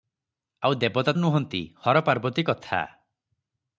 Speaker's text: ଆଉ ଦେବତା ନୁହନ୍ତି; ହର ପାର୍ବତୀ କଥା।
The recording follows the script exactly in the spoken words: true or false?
true